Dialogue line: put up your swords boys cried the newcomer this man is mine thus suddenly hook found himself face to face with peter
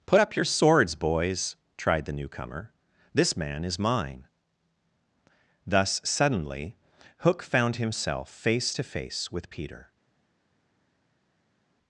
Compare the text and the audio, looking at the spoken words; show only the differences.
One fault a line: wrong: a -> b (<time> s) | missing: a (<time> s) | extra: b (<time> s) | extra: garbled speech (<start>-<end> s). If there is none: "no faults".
wrong: cried -> tried (1.8 s)